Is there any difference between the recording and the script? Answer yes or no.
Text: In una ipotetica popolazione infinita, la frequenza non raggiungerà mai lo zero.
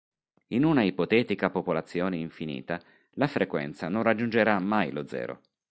no